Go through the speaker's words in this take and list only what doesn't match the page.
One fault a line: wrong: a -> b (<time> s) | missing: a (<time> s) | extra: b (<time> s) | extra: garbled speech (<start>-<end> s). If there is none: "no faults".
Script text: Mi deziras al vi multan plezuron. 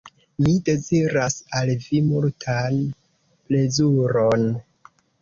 no faults